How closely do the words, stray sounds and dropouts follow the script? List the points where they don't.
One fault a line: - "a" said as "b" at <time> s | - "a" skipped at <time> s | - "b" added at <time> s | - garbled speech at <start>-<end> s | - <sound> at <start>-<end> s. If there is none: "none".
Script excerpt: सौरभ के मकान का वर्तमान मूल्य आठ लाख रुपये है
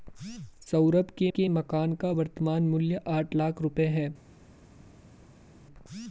- "के" added at 1.3 s